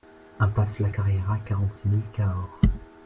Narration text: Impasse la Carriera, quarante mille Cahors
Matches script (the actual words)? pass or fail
fail